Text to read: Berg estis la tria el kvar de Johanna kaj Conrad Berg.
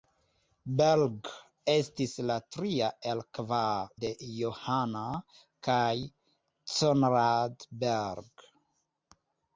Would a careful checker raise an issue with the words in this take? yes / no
no